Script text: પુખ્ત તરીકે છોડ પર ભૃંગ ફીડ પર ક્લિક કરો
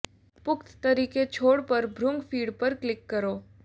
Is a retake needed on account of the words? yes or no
no